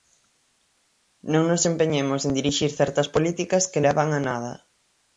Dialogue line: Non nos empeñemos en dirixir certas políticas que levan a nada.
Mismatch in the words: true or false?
false